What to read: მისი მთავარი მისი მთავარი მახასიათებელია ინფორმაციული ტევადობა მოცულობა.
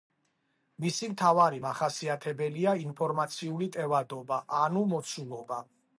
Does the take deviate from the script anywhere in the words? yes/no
yes